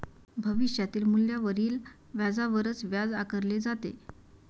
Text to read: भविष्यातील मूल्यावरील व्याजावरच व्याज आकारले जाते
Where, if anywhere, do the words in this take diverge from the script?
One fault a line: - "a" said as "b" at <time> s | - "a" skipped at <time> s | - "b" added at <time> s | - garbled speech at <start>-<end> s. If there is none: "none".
none